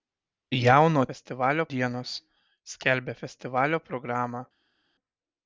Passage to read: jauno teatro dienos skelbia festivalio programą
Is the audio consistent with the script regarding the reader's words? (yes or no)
no